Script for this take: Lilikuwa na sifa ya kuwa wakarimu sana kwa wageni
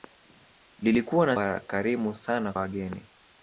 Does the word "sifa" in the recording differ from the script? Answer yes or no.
yes